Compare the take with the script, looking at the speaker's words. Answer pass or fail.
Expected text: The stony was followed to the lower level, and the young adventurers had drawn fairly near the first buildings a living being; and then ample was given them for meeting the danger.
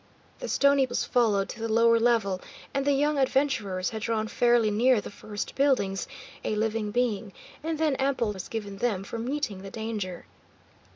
pass